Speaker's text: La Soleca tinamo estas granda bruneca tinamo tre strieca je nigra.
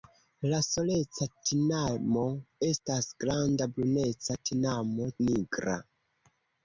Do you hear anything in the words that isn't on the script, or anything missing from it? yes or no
yes